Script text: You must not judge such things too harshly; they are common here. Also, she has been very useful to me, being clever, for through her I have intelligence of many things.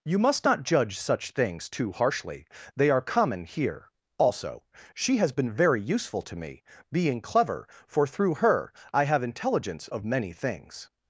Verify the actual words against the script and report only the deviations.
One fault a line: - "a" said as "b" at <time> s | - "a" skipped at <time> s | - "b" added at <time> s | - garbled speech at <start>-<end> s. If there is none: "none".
none